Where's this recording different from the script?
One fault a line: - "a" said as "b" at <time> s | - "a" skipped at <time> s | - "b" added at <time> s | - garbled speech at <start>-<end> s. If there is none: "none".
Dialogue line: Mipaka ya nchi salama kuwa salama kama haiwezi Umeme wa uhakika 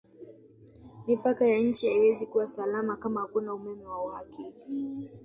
- "salama" said as "haiwezi" at 1.9 s
- "haiwezi" said as "hakuna" at 3.2 s